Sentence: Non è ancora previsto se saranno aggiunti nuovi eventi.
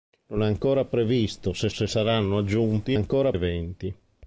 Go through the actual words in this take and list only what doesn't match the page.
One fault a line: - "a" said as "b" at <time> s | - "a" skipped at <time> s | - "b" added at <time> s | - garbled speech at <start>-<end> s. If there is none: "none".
- "se" added at 1.7 s
- "nuovi" said as "ancora" at 3.0 s